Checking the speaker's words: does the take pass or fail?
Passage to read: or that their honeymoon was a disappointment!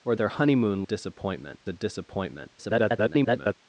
fail